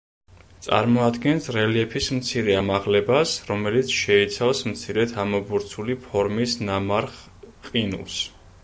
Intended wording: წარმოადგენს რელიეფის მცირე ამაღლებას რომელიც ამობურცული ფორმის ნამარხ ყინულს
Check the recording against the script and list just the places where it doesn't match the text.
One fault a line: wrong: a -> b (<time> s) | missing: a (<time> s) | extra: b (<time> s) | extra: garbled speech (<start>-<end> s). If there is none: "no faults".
extra: შეიცავს მცირედ (4.0 s)